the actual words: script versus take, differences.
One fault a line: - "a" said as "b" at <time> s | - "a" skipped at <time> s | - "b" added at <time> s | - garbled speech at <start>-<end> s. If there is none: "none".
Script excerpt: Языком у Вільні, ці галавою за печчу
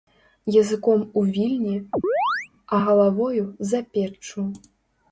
- "ці" said as "а" at 2.7 s